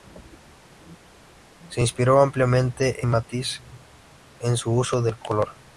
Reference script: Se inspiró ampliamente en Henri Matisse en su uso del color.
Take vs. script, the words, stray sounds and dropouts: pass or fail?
fail